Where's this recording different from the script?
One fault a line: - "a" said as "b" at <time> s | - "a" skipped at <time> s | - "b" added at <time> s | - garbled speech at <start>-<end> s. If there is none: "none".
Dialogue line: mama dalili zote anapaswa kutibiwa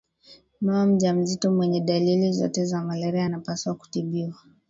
- "mjamzito mwenye" added at 0.8 s
- "za malaria" added at 2.6 s